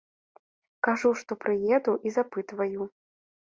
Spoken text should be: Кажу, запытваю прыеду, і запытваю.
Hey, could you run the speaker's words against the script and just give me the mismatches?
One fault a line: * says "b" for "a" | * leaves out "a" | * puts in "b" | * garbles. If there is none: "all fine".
* says "што" for "запытваю"